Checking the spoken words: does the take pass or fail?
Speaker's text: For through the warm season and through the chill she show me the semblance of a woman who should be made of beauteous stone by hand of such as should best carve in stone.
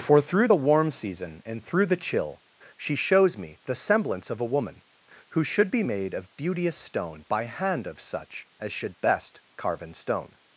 fail